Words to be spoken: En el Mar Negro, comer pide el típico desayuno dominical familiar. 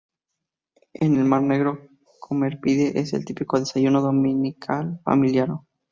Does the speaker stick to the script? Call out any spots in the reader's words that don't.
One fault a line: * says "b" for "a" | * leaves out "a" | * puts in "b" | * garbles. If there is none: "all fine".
* puts in "es"